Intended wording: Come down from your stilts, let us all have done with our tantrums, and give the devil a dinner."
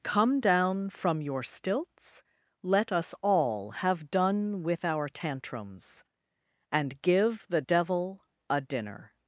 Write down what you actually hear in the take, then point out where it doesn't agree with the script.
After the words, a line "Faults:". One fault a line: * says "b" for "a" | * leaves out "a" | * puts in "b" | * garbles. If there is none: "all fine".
Come down from your stilts, let us all have done with our tantrums, and give the devil a dinner."
Faults:
all fine